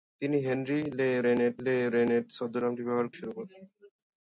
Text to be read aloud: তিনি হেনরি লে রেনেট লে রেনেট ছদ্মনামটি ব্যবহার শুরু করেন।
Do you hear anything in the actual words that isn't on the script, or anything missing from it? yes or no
no